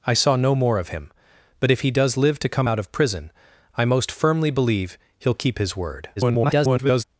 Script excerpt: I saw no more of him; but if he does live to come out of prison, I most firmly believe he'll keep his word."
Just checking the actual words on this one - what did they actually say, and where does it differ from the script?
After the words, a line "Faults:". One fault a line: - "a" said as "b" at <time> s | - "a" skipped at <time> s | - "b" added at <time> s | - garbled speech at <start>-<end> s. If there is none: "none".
I saw no more of him; but if he does live to come out of prison, I most firmly believe he'll keep his word." [garbled]
Faults:
- garbled speech at 6.2-7.0 s